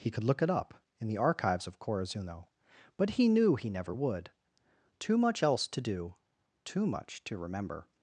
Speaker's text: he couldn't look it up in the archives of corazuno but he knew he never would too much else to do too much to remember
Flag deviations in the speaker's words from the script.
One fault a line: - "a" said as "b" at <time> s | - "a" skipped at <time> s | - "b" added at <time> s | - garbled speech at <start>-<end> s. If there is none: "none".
- "couldn't" said as "could" at 0.1 s